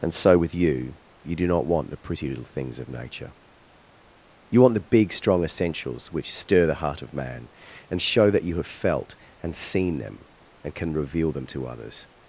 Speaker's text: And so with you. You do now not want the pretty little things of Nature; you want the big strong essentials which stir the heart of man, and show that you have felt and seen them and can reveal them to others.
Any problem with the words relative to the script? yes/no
yes